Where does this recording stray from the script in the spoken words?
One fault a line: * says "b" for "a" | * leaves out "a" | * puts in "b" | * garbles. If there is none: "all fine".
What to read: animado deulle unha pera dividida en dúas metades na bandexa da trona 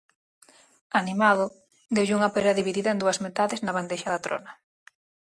all fine